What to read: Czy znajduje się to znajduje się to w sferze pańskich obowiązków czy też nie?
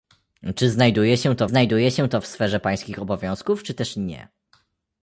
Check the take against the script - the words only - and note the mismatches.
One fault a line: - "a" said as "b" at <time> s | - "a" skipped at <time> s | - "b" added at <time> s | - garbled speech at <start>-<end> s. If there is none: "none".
none